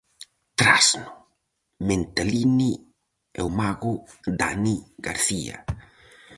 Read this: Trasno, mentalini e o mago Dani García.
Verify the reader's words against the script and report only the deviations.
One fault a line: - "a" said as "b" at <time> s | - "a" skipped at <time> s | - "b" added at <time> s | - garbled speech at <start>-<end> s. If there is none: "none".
none